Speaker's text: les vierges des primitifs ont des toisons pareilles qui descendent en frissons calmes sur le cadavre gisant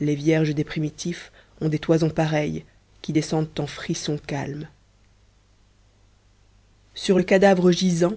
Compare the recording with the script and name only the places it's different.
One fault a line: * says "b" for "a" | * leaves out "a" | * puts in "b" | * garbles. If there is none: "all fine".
all fine